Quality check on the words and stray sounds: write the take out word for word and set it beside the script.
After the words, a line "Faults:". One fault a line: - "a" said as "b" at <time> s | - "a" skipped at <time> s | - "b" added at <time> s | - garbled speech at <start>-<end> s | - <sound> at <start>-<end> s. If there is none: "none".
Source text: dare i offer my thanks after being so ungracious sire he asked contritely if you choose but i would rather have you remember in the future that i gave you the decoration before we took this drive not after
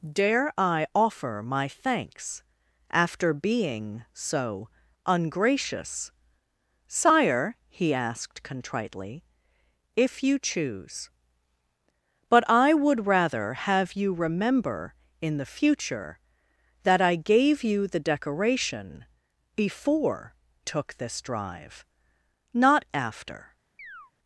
dare i offer my thanks after being so ungracious sire he asked contritely if you choose but i would rather have you remember in the future that i gave you the decoration before took this drive not after
Faults:
- "we" skipped at 20.3 s
- chirp at 23.8-24.1 s